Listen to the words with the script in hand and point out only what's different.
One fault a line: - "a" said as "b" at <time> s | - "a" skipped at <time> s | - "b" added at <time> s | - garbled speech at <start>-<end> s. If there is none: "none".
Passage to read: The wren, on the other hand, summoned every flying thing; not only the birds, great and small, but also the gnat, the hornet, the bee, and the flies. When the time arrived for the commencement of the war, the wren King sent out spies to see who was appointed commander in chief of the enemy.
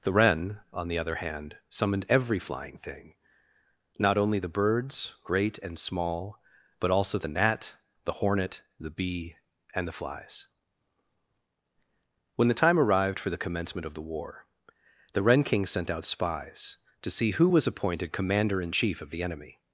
none